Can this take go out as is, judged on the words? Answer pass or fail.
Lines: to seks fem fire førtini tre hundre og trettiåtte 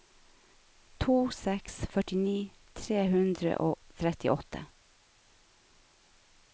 fail